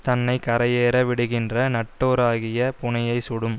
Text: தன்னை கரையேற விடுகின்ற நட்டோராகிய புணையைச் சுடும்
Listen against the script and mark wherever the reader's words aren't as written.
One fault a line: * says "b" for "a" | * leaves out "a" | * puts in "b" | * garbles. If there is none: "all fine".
all fine